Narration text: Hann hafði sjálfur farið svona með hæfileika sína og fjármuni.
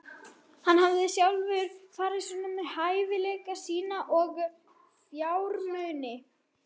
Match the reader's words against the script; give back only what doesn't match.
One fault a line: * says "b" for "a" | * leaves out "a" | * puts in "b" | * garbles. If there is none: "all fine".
all fine